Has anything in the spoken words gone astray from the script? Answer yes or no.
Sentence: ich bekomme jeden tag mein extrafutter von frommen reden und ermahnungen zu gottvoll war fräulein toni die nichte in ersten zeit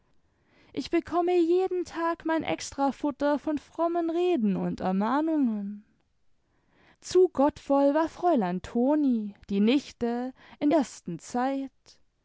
no